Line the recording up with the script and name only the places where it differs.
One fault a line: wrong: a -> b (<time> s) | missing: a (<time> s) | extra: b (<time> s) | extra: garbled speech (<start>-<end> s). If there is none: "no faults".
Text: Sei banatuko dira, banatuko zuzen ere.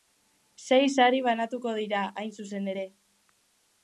extra: sari (0.9 s)
wrong: banatuko -> hain (2.2 s)